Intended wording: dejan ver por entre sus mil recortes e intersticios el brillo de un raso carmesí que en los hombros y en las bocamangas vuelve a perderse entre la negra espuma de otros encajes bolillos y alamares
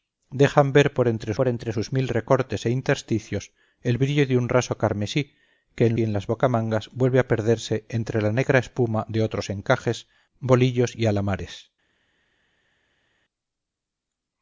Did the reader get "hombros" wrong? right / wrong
wrong